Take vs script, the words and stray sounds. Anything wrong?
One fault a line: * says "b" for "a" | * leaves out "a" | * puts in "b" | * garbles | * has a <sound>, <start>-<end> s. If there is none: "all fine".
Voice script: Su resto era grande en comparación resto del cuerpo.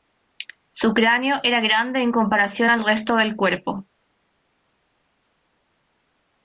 * says "cráneo" for "resto"
* puts in "al"